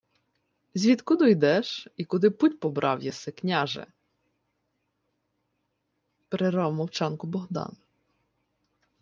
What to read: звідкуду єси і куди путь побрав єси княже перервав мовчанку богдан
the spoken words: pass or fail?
fail